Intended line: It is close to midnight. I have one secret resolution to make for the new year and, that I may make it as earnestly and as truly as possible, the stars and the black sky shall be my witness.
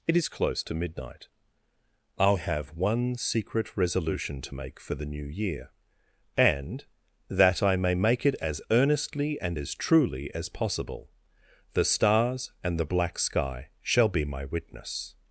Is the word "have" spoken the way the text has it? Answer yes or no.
yes